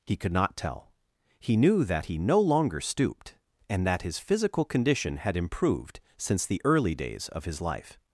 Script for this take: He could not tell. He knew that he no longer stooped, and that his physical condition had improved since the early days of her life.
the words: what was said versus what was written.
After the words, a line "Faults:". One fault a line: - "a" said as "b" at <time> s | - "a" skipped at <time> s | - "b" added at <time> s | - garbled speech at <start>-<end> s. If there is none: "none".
He could not tell. He knew that he no longer stooped, and that his physical condition had improved since the early days of his life.
Faults:
- "her" said as "his" at 7.4 s